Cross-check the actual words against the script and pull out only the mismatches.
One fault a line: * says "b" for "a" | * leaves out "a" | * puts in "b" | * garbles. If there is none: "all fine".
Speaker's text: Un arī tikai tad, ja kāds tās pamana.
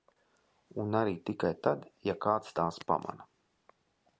all fine